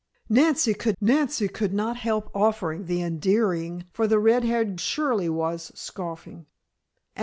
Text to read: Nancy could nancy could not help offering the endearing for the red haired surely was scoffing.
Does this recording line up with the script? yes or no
yes